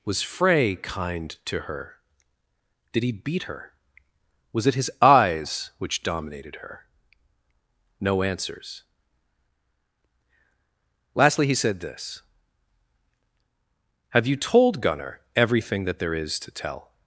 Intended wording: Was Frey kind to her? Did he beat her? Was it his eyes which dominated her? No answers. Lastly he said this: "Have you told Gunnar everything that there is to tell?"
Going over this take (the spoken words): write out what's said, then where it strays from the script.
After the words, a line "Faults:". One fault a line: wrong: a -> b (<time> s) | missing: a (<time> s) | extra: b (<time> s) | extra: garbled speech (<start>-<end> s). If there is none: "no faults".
Was Frey kind to her? Did he beat her? Was it his eyes which dominated her? No answers. Lastly he said this: "Have you told Gunnar everything that there is to tell?"
Faults:
no faults